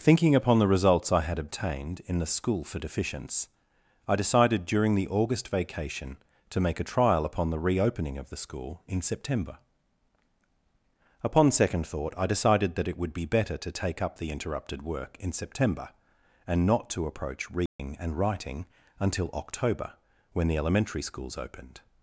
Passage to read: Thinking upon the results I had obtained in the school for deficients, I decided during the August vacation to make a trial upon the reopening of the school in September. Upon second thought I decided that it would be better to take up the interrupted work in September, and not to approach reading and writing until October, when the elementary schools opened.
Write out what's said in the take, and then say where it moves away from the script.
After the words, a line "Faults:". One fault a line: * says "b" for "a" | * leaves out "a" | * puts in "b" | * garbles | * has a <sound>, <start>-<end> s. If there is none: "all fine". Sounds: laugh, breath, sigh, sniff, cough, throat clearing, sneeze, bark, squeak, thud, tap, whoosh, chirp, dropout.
Thinking upon the results I had obtained in the school for deficients, I decided during the August vacation to make a trial upon the reopening of the school in September. Upon second thought I decided that it would be better to take up the interrupted work in September, and not to approach reading and writing until October, when the elementary schools opened.
Faults:
* has a dropout, 17.7-17.8 s